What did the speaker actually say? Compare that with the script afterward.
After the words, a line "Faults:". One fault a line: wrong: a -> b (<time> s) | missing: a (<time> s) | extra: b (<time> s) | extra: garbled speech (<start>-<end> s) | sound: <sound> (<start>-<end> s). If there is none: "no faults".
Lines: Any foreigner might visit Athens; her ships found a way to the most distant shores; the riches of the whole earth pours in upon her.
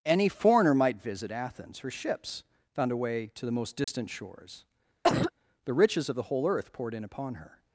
Any foreigner might visit Athens; her ships found a way to the most distant shores; the riches of the whole earth poured in upon her.
Faults:
sound: dropout (3.8-3.9 s)
sound: cough (5.0-5.3 s)
wrong: pours -> poured (6.7 s)